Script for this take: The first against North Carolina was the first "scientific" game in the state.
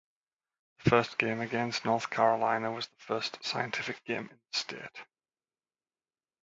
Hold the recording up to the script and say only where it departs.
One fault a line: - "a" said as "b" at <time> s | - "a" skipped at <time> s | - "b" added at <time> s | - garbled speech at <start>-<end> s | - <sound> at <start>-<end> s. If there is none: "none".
- "game" added at 1.2 s